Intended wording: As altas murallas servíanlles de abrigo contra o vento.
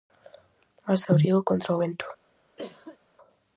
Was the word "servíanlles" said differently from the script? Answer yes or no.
yes